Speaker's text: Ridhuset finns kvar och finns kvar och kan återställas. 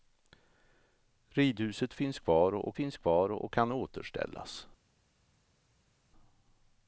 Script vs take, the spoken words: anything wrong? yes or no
no